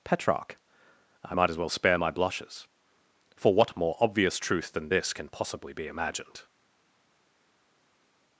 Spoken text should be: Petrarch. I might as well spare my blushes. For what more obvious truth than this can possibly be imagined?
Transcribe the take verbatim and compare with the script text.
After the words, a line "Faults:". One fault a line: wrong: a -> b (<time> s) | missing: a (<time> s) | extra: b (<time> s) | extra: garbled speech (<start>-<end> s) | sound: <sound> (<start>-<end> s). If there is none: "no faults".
Petrarch. I might as well spare my blushes. For what more obvious truth than this can possibly be imagined?
Faults:
no faults